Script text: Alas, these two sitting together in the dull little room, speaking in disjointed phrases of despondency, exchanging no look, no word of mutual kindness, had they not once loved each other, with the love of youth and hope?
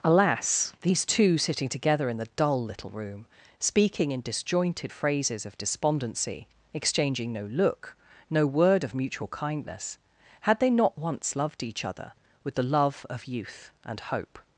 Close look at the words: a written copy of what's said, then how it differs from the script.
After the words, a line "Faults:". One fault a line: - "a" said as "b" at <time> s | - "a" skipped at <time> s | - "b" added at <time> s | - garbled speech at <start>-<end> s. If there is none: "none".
Alas, these two sitting together in the dull little room, speaking in disjointed phrases of despondency, exchanging no look, no word of mutual kindness, had they not once loved each other, with the love of youth and hope?
Faults:
none